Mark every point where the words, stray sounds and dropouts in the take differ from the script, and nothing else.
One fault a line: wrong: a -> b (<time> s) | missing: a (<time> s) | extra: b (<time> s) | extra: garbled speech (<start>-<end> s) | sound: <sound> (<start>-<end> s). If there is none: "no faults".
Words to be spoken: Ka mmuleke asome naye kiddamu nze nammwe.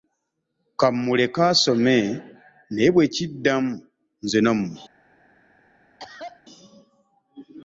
extra: bwe (2.9 s)
sound: cough (6.0-6.4 s)